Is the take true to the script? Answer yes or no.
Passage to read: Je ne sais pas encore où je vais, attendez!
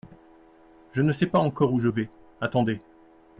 yes